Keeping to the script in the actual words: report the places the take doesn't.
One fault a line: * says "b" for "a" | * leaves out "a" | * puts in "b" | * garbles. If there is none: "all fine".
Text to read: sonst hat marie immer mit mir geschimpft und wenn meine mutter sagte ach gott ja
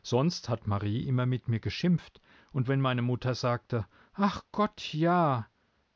all fine